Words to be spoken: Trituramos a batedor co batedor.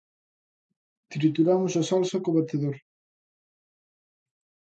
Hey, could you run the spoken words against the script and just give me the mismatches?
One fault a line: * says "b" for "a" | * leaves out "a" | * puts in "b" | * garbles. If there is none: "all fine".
* says "salsa" for "batedor"